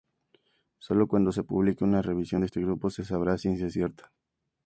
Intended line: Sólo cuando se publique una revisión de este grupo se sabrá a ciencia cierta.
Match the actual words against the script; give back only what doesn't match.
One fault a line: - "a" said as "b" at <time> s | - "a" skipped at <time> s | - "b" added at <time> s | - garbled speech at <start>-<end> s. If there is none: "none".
none